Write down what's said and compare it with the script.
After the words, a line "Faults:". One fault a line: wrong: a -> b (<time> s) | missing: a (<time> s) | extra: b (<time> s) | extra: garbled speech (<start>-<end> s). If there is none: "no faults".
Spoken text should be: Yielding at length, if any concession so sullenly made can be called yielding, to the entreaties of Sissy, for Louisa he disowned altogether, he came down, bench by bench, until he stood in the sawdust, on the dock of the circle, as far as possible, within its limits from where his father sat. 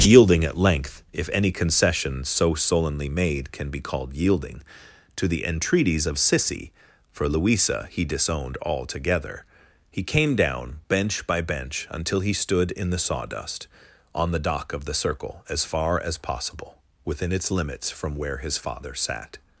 Yielding at length, if any concession so sullenly made can be called yielding, to the entreaties of Sissy, for Louisa he disowned altogether, he came down, bench by bench, until he stood in the sawdust, on the dock of the circle, as far as possible, within its limits from where his father sat.
Faults:
no faults